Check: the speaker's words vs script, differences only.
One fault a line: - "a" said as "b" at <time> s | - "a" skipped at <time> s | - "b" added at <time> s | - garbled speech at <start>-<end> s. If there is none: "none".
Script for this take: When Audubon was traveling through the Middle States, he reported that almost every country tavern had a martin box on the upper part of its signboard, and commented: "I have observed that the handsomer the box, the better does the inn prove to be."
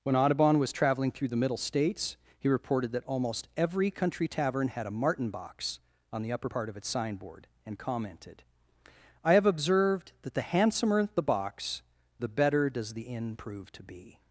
none